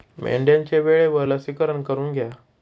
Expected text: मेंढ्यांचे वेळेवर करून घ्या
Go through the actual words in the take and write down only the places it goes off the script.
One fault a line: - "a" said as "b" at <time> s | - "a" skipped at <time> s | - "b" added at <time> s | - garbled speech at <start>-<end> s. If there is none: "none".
- "लसीकरण" added at 1.3 s